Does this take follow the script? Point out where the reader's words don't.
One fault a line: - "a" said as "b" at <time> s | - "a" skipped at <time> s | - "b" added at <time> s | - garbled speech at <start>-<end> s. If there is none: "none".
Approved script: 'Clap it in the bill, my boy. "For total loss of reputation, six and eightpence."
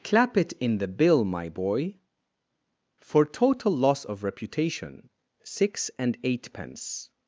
none